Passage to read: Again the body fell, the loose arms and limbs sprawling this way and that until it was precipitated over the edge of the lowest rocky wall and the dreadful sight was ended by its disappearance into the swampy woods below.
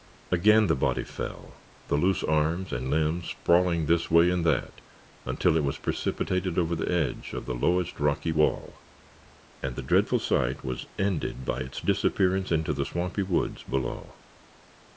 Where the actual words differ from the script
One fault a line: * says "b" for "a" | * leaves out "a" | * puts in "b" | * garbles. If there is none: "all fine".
all fine